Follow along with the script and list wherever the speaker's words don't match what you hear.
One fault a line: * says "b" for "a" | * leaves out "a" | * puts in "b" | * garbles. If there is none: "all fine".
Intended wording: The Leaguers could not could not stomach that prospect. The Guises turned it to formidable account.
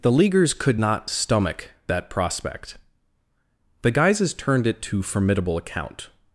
* leaves out "could not"